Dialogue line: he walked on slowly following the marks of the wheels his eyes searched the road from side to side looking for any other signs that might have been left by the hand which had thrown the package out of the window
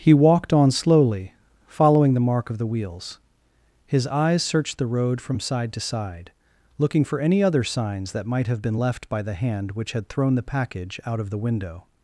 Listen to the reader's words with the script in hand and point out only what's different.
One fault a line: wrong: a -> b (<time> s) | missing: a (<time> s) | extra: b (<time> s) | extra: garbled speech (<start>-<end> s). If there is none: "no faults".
wrong: marks -> mark (2.2 s)